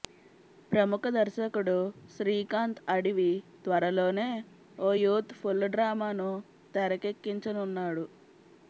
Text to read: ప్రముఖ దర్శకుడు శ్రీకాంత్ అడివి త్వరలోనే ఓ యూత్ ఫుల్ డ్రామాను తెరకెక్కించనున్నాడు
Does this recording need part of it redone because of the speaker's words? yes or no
no